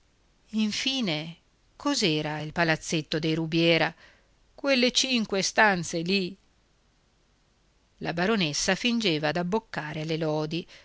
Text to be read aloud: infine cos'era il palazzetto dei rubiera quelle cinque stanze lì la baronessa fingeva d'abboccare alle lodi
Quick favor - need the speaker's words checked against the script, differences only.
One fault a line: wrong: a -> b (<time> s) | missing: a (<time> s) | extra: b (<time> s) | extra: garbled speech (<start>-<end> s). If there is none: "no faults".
no faults